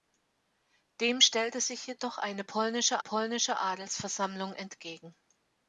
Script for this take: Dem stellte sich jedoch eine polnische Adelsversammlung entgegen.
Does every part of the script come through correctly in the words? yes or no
no